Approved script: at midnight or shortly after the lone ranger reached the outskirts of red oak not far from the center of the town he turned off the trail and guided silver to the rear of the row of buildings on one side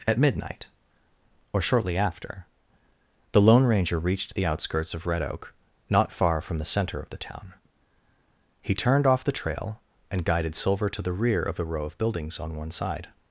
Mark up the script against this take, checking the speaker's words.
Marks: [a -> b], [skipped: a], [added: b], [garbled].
at midnight or shortly after the lone ranger reached the outskirts of red oak not far from the center of the town he turned off the trail and guided silver to the rear of the row of buildings on one side